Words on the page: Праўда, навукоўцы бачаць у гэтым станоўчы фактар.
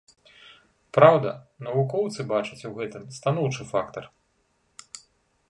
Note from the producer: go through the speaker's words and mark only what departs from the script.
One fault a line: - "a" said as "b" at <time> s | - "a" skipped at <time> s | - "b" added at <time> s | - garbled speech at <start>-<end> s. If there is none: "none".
none